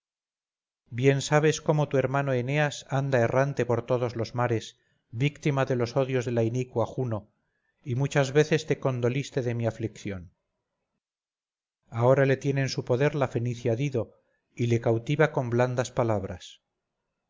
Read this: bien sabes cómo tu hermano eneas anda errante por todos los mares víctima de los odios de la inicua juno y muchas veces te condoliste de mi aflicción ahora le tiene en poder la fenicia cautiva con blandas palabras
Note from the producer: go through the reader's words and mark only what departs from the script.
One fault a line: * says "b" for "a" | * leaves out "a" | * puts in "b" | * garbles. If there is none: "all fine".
* puts in "su"
* puts in "dido y le"